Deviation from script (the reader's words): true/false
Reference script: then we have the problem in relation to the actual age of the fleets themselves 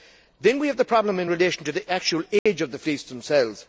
false